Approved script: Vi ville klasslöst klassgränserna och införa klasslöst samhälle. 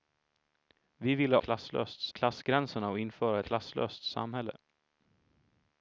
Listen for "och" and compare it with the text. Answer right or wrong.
right